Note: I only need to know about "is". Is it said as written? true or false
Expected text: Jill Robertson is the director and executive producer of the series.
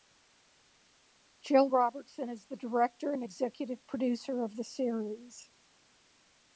true